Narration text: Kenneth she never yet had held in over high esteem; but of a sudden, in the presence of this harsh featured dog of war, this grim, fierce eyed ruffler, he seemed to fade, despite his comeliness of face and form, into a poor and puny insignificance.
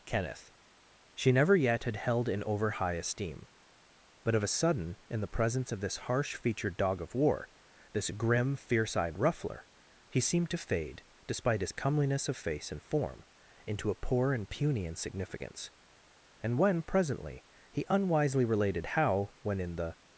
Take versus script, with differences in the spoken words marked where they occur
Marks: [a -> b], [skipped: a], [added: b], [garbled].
Kenneth she never yet had held in over high esteem; but of a sudden, in the presence of this harsh featured dog of war, this grim, fierce eyed ruffler, he seemed to fade, despite his comeliness of face and form, into a poor and puny insignificance. [added: And when presently he unwisely related how when in the]